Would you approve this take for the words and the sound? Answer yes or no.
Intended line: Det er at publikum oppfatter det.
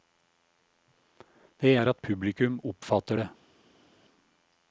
yes